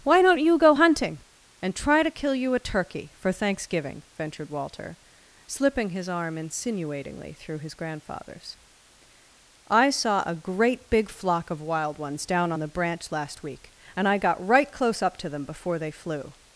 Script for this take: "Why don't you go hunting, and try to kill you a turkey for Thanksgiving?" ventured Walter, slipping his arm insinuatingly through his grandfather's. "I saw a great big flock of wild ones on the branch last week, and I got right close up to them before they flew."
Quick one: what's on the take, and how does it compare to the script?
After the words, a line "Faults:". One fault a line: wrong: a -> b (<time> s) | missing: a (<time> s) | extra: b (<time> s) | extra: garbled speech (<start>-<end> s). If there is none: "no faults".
"Why don't you go hunting, and try to kill you a turkey for Thanksgiving?" ventured Walter, slipping his arm insinuatingly through his grandfather's. "I saw a great big flock of wild ones down on the branch last week, and I got right close up to them before they flew."
Faults:
extra: down (12.3 s)